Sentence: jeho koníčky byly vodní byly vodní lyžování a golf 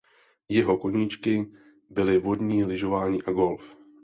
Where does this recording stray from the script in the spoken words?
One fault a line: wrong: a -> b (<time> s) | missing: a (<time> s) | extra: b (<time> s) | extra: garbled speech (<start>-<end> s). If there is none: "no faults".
missing: byly vodní (2.6 s)